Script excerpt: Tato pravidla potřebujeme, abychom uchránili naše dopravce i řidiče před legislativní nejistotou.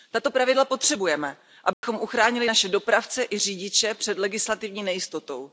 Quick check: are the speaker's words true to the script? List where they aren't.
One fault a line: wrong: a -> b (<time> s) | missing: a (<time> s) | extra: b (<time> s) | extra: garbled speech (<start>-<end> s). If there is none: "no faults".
no faults